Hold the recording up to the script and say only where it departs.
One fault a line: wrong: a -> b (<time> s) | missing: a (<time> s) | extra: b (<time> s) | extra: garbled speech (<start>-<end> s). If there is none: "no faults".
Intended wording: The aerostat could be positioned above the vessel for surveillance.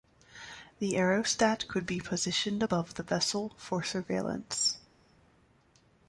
no faults